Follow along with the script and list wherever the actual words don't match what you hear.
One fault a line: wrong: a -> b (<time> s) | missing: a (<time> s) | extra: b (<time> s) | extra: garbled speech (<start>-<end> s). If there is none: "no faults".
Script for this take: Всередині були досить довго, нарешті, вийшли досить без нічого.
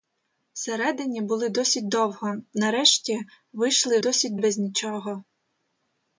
no faults